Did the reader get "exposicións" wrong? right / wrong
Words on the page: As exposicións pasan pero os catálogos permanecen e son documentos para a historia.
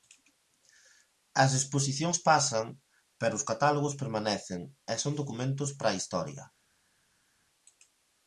right